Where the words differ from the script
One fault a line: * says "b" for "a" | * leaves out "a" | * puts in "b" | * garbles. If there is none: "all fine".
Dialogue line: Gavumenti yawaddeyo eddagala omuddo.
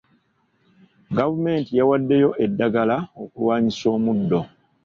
* puts in "okulwanyisa"